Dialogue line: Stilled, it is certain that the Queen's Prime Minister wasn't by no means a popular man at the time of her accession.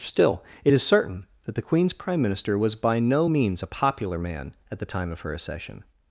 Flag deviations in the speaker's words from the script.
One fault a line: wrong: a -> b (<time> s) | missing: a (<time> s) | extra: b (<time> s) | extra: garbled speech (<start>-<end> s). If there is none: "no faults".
wrong: Stilled -> Still (0.0 s)
wrong: wasn't -> was (2.6 s)